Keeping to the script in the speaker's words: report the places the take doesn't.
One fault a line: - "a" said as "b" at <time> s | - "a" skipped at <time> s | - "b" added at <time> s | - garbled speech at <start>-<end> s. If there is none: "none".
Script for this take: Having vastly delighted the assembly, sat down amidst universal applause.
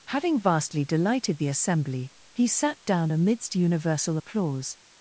- "he" added at 2.3 s